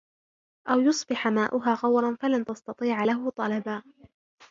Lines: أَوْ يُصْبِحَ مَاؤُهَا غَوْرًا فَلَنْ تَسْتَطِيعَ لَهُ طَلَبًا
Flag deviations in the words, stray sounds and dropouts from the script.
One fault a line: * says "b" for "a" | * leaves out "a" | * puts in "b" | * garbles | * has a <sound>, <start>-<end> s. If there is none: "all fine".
all fine